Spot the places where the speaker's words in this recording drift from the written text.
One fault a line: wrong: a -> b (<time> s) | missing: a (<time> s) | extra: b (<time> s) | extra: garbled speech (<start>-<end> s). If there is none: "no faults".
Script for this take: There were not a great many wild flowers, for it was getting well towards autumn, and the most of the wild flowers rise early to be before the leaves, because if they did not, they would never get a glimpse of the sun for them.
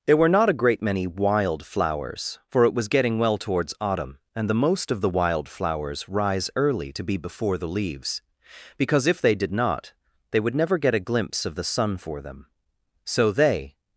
extra: So they (13.0 s)